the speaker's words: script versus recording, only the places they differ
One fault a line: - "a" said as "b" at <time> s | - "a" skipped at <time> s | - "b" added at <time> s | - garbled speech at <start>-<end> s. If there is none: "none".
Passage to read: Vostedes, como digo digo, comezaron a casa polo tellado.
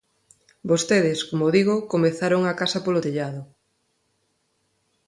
- "digo" skipped at 1.8 s